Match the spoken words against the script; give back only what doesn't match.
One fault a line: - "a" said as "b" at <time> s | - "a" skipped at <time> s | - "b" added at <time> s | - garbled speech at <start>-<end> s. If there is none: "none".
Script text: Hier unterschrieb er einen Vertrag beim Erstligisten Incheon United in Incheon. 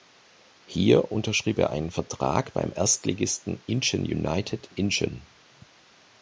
- "in" skipped at 4.7 s